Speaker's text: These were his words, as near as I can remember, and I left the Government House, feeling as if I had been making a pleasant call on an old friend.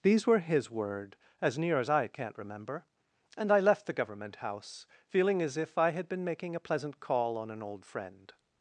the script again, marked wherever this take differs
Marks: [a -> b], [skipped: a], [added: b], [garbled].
These were his [words, -> word] as near as I [can -> can't] remember, and I left the Government House, feeling as if I had been making a pleasant call on an old friend.